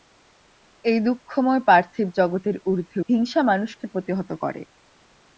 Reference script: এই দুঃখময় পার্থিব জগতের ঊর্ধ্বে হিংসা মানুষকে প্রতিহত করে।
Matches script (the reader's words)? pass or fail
pass